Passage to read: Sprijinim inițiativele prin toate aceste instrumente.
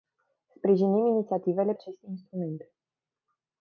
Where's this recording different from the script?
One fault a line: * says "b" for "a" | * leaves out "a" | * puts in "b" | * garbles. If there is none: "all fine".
* leaves out "prin toate"